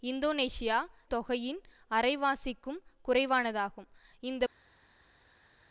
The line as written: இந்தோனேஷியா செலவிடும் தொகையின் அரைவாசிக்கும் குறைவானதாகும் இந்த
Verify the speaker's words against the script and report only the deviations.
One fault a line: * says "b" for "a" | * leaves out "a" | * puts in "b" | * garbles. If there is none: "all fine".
* leaves out "செலவிடும்"